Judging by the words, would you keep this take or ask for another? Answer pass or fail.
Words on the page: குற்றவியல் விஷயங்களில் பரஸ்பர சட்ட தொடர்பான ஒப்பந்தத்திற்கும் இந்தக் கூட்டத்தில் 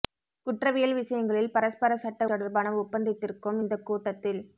pass